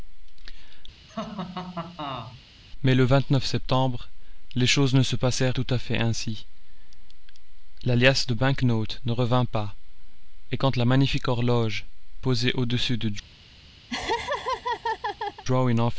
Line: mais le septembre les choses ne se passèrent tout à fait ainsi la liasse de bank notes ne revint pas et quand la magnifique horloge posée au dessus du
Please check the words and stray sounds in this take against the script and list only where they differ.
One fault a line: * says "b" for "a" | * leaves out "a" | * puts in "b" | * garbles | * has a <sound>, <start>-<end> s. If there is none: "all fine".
* has a laugh, 1.1-2.4 s
* has a laugh, 13.9-15.4 s